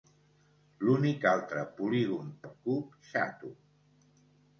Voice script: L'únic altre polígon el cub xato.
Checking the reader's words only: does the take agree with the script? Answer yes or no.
yes